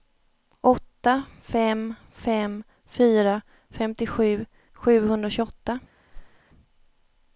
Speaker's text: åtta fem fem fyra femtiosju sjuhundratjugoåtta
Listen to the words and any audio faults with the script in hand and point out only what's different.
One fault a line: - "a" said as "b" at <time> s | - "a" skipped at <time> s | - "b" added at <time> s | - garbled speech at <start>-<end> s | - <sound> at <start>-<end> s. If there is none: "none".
- whoosh at 6.1-6.4 s